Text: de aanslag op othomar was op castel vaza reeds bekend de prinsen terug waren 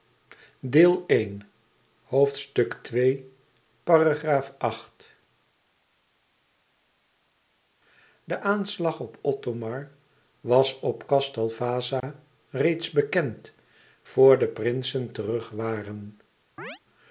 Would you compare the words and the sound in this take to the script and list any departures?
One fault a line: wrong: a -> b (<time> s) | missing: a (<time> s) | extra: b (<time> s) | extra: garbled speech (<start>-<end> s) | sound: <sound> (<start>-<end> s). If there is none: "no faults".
sound: dropout (12.0-12.0 s)
extra: vor (14.0 s)
sound: chirp (16.6-16.8 s)